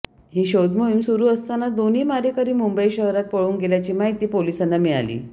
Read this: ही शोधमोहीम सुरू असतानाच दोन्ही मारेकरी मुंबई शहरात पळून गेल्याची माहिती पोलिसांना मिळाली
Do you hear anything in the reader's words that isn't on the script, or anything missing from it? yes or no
no